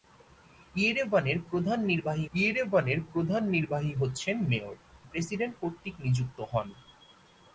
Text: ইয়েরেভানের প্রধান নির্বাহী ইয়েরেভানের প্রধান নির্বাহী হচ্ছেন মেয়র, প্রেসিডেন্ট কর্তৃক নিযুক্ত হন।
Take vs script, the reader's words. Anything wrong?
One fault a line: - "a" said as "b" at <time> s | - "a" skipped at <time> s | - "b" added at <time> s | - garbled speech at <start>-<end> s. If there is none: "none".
none